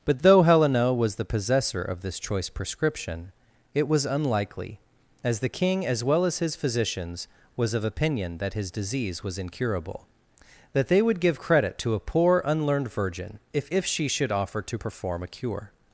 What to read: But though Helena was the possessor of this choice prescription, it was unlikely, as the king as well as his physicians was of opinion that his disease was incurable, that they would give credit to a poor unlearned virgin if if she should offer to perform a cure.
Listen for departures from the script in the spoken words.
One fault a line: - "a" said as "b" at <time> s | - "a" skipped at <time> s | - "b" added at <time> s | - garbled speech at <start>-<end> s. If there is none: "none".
none